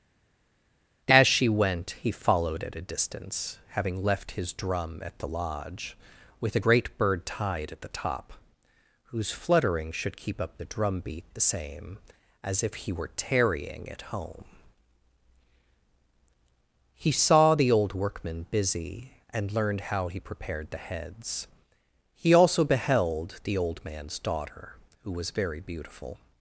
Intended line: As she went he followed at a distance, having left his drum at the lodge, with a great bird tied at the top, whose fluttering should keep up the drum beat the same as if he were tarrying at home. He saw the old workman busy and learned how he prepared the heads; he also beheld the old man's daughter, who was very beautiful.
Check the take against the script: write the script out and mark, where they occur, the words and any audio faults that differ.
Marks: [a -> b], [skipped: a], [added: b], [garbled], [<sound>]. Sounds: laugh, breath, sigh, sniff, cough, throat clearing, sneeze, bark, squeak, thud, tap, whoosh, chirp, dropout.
As she went he followed at a distance, having left his drum at the lodge, with a great bird tied at the top, whose fluttering should keep up the drum beat the same as if he were tarrying at home. He saw the old workman busy and learned how he prepared the heads; he also beheld the old man's daughter, who was very beautiful.